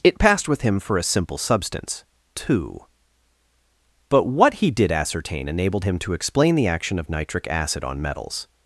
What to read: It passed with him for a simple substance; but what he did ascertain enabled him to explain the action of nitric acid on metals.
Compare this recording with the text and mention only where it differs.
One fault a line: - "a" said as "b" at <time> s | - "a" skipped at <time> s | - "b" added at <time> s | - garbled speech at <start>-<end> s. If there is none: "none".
- "two" added at 2.4 s